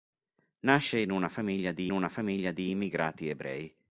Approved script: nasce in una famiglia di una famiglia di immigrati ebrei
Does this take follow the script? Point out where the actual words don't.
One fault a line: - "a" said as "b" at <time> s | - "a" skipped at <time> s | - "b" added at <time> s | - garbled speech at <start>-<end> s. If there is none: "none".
none